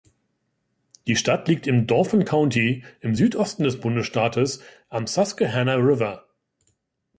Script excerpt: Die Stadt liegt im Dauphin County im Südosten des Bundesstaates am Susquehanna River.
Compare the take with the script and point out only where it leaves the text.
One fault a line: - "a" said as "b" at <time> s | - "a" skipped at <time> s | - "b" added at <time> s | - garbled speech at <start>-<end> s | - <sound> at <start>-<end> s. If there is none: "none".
none